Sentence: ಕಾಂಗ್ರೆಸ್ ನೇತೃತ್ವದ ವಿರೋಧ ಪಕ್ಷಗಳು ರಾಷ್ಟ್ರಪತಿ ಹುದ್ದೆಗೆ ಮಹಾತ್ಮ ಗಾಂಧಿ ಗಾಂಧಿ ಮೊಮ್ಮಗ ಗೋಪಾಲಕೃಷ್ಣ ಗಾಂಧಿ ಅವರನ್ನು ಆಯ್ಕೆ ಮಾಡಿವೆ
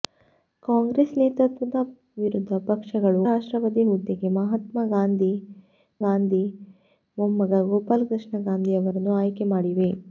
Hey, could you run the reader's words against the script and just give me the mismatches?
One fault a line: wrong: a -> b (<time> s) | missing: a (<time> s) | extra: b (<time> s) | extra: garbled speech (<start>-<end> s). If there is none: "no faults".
no faults